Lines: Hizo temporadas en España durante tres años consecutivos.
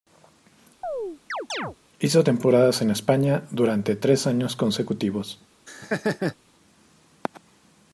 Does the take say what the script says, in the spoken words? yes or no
yes